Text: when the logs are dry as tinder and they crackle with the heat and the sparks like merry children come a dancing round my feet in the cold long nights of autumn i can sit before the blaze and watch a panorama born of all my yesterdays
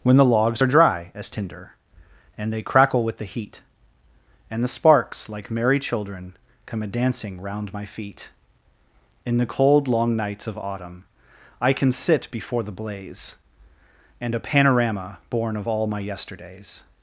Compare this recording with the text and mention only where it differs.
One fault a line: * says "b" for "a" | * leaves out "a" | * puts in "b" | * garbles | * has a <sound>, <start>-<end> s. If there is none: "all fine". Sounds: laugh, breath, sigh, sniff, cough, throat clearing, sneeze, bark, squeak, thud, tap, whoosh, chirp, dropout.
* leaves out "watch"